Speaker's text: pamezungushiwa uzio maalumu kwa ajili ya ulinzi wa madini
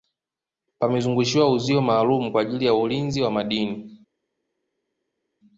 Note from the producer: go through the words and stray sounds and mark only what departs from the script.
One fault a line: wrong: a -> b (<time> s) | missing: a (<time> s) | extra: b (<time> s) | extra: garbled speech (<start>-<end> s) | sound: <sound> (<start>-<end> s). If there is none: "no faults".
no faults